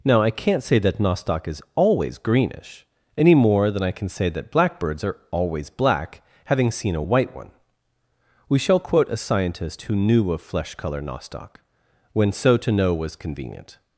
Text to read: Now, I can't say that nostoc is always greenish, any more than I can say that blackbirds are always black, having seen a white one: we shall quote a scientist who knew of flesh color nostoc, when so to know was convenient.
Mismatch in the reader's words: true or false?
false